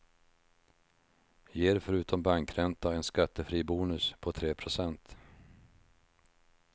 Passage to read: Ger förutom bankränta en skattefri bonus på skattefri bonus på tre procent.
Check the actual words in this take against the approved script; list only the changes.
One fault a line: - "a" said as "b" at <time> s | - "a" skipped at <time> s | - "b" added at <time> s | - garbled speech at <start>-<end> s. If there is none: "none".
- "skattefri bonus på" skipped at 4.3 s